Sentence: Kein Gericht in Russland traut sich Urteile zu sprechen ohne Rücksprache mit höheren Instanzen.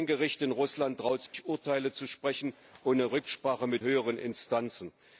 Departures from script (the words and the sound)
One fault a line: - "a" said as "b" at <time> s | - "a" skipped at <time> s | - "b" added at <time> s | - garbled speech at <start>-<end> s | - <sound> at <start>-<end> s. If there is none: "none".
- dropout at 1.3-1.3 s